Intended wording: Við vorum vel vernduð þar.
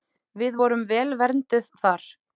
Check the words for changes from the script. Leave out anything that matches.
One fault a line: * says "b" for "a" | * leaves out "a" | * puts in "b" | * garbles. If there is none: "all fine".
all fine